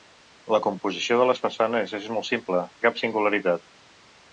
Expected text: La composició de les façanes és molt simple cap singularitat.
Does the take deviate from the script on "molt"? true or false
false